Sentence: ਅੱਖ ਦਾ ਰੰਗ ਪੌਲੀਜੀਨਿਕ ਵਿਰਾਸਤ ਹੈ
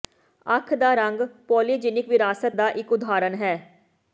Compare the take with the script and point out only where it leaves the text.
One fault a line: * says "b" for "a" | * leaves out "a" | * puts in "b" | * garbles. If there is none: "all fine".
* puts in "ਦਾ ਇੱਕ ਉਦਾਹਰਣ"